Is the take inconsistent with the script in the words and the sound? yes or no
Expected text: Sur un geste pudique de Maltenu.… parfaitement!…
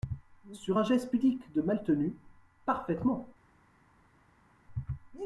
no